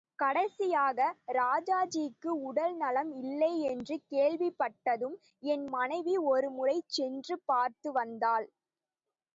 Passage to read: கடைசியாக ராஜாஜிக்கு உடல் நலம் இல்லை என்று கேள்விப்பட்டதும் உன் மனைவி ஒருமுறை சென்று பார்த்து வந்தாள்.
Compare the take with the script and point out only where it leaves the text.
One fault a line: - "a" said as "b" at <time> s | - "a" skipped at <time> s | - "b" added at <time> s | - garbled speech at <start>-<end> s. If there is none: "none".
- "உன்" said as "என்" at 5.4 s